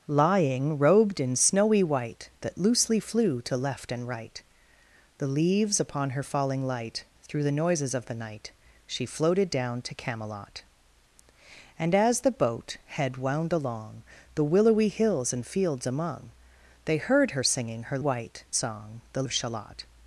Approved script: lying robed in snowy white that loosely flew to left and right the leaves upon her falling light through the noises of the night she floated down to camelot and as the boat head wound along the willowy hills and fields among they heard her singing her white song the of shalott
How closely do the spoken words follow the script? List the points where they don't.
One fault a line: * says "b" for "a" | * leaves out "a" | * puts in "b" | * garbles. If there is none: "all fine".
all fine